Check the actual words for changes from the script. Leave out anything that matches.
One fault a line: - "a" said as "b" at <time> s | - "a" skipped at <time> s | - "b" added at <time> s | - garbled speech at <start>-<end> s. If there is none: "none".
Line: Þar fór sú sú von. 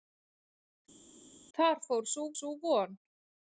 none